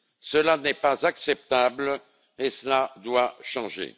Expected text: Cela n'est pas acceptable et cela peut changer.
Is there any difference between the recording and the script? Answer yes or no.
yes